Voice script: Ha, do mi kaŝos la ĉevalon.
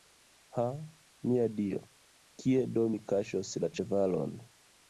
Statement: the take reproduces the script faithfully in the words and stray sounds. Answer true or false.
false